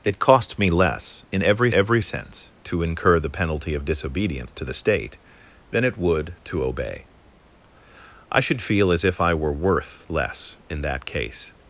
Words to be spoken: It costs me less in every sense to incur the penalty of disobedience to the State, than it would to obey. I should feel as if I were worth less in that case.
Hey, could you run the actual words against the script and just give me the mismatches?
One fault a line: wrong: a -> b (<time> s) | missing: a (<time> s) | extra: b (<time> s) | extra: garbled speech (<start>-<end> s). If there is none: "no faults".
extra: every (1.7 s)